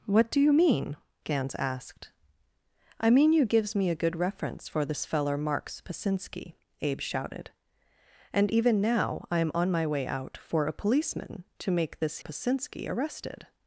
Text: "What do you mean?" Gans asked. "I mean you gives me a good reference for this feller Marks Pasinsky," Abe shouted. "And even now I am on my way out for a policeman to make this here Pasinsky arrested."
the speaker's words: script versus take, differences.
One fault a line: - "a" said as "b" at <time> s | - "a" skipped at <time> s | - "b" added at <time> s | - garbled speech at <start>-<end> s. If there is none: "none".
- "here" skipped at 12.2 s